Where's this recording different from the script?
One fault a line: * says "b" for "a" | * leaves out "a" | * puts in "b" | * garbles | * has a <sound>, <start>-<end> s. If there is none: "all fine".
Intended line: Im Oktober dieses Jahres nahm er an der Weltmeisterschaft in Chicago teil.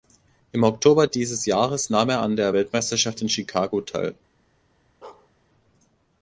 * has a bark, 5.0-5.3 s